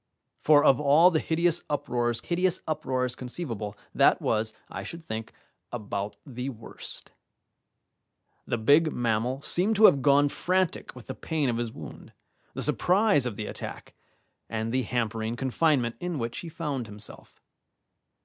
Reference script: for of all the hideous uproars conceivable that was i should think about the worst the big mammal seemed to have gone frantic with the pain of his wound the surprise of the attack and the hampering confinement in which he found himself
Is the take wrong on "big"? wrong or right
right